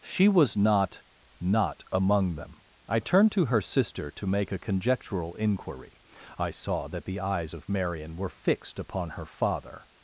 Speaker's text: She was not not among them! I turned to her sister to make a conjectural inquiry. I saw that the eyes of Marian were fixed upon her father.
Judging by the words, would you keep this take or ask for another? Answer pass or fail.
pass